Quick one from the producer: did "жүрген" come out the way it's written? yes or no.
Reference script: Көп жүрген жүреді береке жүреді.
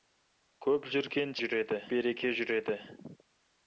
yes